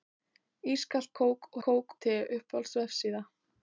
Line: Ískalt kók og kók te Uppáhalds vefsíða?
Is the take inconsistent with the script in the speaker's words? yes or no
no